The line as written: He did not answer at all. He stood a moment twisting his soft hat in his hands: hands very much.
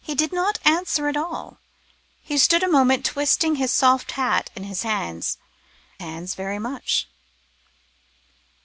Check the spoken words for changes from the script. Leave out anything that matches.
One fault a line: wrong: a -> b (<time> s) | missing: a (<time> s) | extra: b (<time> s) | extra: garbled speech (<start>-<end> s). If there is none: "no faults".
no faults